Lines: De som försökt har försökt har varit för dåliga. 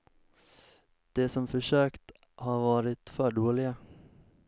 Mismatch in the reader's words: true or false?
true